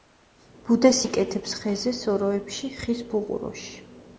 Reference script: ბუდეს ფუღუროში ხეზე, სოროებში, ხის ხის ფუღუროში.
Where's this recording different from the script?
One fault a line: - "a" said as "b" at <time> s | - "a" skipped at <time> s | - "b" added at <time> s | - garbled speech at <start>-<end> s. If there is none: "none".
- "ფუღუროში" said as "იკეთებს" at 1.1 s
- "ხის" skipped at 3.0 s